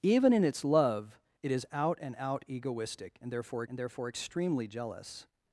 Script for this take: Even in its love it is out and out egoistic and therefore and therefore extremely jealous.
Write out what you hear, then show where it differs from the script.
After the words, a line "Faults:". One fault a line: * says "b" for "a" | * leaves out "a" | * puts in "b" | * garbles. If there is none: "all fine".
Even in its love it is out and out egoistic and therefore and therefore extremely jealous.
Faults:
all fine